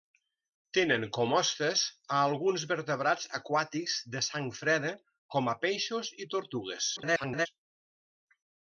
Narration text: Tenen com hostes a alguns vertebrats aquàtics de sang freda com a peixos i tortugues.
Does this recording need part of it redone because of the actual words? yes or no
yes